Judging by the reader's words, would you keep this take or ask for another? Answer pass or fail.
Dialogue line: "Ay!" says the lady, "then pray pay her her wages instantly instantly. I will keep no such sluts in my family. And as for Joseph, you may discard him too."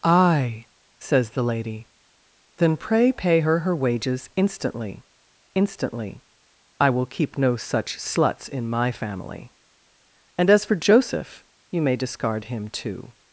pass